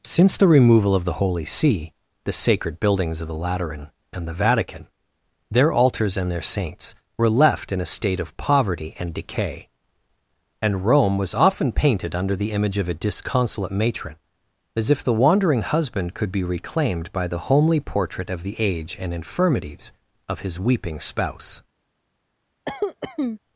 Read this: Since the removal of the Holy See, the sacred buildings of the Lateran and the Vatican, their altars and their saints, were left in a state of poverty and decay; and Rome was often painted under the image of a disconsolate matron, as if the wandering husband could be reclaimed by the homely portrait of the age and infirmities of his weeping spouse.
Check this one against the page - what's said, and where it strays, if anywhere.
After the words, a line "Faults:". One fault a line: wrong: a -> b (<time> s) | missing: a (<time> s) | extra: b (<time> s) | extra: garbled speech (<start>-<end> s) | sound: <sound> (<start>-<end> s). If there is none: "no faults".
Since the removal of the Holy See, the sacred buildings of the Lateran and the Vatican, their altars and their saints, were left in a state of poverty and decay; and Rome was often painted under the image of a disconsolate matron, as if the wandering husband could be reclaimed by the homely portrait of the age and infirmities of his weeping spouse.
Faults:
sound: cough (22.7-23.4 s)